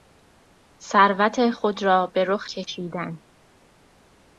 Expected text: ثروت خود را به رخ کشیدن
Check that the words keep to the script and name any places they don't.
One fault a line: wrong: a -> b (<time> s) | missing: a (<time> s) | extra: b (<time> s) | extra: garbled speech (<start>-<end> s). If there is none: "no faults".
no faults